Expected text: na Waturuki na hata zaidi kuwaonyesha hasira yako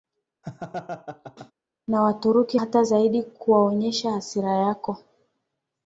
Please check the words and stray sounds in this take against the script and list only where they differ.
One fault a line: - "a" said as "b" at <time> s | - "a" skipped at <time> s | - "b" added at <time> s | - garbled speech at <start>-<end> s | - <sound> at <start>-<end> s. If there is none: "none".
- laugh at 0.4-1.5 s
- "na" skipped at 2.6 s